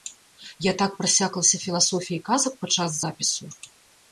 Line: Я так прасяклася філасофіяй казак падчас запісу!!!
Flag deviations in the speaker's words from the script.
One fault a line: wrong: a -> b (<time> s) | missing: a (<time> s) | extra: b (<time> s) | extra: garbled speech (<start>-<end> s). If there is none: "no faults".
no faults